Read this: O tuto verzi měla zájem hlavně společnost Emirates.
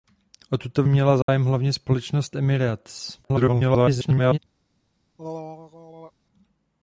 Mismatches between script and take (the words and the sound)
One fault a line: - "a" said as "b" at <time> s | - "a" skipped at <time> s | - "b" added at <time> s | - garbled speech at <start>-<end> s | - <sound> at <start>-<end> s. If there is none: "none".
- "verzi" skipped at 0.8 s
- dropout at 1.2-1.3 s
- garbled speech at 3.2-4.4 s
- throat clearing at 5.2-6.1 s